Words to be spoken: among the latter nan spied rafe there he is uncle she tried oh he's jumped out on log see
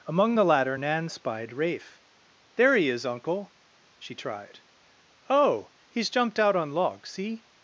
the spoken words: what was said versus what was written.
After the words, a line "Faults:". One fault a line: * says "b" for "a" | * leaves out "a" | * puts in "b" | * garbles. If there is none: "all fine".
among the latter nan spied rafe there he is uncle she tried oh he's jumped out on log see
Faults:
all fine